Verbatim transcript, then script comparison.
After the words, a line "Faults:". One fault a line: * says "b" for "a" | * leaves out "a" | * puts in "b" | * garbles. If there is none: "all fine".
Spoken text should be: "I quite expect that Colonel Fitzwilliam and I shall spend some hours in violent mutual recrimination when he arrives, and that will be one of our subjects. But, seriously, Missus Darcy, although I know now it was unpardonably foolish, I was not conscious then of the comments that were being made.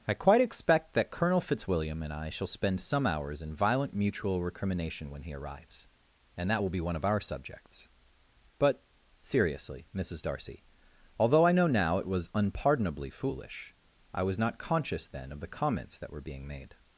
"I quite expect that Colonel Fitzwilliam and I shall spend some hours in violent mutual recrimination when he arrives, and that will be one of our subjects. But, seriously, Missus Darcy, although I know now it was unpardonably foolish, I was not conscious then of the comments that were being made.
Faults:
all fine